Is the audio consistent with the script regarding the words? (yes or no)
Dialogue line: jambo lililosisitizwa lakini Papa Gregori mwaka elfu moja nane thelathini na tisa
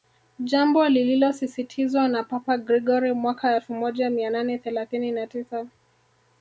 no